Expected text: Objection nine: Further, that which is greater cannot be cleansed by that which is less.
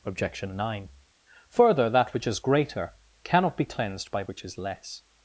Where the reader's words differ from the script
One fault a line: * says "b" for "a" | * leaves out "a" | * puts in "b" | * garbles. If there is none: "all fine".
* leaves out "that"